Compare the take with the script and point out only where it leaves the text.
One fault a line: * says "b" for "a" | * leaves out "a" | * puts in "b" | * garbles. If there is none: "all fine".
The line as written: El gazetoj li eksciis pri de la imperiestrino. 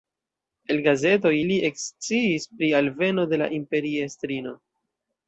* puts in "alveno"